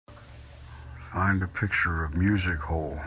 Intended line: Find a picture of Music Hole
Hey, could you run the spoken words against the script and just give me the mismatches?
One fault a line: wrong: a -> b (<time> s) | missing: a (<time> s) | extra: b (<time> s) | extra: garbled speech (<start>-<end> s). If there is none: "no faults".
no faults